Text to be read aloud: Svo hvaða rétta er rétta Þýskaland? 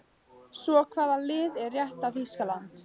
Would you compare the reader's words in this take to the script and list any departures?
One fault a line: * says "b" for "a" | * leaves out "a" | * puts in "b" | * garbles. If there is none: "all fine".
* says "lið" for "rétta"